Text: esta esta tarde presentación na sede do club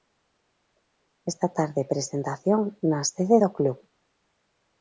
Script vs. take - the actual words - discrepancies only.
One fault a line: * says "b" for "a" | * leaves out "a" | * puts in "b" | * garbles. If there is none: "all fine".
* leaves out "esta"